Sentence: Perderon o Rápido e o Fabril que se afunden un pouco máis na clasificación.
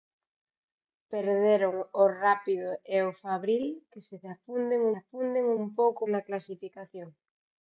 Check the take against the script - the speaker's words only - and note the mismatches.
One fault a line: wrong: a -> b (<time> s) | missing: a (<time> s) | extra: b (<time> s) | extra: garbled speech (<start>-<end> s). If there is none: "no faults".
extra: afunden (5.0 s)
missing: máis (6.0 s)